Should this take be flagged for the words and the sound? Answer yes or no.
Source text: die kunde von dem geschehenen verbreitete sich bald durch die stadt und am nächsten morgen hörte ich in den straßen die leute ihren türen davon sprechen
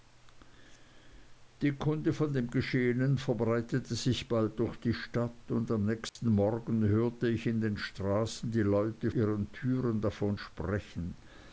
yes